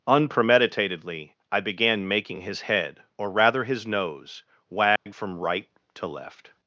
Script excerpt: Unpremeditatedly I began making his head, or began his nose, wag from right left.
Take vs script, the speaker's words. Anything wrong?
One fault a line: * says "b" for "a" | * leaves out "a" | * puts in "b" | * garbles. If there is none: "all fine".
* says "rather" for "began"
* puts in "to"